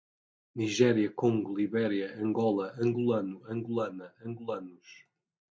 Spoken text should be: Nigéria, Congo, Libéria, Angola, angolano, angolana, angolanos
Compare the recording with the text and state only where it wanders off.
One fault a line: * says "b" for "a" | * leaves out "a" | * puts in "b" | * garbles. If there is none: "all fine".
all fine